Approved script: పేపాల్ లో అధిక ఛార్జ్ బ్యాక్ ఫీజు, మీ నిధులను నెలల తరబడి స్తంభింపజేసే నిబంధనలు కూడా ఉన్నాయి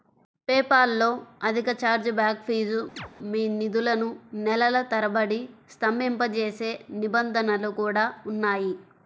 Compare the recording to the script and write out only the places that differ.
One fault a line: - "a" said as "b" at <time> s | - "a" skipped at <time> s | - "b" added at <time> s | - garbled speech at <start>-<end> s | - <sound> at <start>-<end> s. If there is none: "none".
- chirp at 3.0-3.1 s